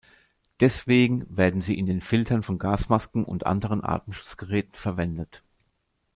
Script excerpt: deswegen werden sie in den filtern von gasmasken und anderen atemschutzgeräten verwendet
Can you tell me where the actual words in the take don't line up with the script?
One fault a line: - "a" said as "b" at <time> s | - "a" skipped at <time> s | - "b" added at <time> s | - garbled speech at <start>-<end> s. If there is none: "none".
none